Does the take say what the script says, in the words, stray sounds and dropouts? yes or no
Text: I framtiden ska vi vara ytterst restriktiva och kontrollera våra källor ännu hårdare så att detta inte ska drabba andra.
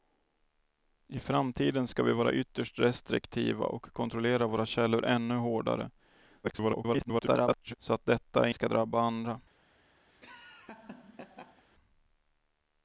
no